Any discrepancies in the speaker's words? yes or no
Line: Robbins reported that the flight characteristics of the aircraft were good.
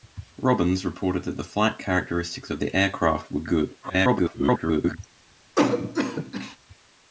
yes